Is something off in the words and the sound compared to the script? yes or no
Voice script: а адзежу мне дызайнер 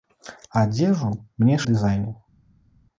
no